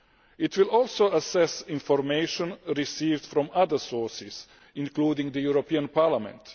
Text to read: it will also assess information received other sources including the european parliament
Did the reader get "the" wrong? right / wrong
right